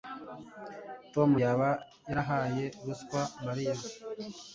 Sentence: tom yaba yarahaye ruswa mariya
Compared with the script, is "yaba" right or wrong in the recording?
right